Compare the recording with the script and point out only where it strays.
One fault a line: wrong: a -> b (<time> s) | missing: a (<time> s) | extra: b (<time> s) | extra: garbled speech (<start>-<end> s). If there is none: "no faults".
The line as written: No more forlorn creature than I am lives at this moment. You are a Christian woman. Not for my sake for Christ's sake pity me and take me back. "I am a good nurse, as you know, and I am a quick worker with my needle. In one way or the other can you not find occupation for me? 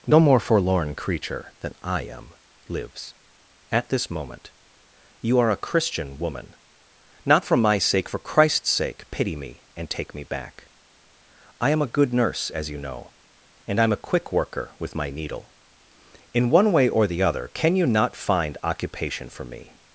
no faults